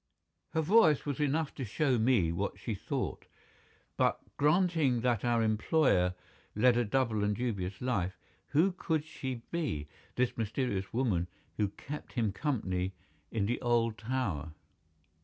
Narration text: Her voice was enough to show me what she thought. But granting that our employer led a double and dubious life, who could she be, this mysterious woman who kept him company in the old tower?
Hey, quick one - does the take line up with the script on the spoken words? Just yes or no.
yes